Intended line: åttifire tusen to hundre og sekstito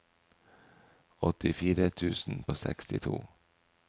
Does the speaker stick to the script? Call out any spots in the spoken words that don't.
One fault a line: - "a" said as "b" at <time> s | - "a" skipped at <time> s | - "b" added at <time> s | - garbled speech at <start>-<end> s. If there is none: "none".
- "to hundre" skipped at 2.4 s